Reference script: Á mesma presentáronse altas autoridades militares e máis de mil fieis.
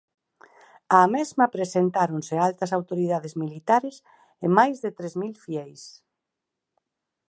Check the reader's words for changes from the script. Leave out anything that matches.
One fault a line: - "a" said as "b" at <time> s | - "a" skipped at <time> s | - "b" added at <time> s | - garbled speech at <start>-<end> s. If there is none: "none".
- "tres" added at 5.0 s